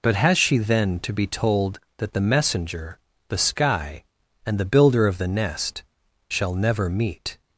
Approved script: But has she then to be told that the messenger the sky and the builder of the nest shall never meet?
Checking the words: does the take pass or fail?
pass